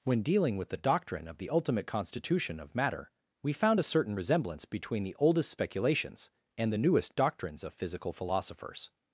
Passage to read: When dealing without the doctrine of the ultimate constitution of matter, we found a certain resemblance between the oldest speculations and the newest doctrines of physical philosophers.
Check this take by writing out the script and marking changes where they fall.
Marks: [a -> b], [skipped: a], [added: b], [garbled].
When dealing [without -> with] the doctrine of the ultimate constitution of matter, we found a certain resemblance between the oldest speculations and the newest doctrines of physical philosophers.